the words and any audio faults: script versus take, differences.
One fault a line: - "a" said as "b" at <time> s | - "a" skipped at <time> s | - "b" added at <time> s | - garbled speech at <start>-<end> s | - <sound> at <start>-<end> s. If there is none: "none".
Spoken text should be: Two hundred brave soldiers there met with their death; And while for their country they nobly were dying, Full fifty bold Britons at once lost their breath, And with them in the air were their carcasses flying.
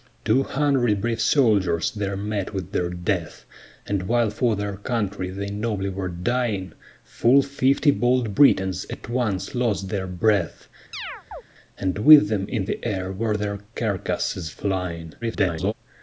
- chirp at 10.9-11.4 s
- garbled speech at 15.2-15.7 s